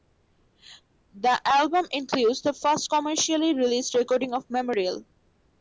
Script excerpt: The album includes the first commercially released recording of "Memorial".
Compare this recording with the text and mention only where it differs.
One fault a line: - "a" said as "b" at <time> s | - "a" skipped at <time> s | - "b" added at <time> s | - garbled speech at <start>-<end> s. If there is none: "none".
none